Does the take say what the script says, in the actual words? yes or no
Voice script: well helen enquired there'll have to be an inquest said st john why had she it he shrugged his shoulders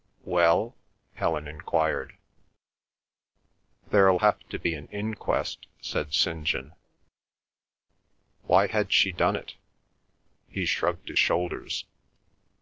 no